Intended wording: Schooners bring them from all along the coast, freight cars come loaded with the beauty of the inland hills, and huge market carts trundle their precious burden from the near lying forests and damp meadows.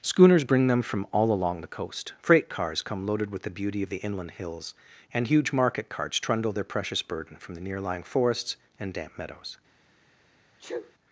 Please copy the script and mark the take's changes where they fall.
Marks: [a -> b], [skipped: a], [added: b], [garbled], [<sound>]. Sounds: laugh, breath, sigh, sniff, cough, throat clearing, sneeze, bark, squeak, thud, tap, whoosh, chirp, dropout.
Schooners bring them from all along the coast, freight cars come loaded with the beauty of the inland hills, and huge market carts trundle their precious burden from the near lying forests and damp meadows. [sneeze]